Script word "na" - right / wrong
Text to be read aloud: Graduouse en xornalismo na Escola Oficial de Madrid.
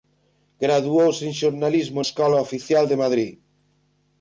wrong